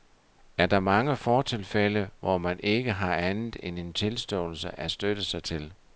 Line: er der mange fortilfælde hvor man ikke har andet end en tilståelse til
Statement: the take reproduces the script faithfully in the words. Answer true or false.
false